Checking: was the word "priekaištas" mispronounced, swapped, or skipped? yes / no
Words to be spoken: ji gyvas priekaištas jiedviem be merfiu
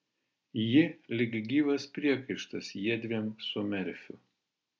no